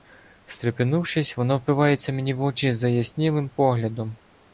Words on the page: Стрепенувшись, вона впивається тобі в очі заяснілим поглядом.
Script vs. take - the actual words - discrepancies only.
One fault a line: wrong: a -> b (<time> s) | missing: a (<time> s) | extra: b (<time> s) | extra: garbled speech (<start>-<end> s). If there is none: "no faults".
wrong: тобі -> мені (2.1 s)